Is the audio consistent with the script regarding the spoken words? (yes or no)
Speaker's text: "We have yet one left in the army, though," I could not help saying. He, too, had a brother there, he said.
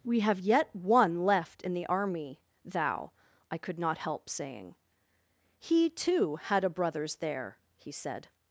no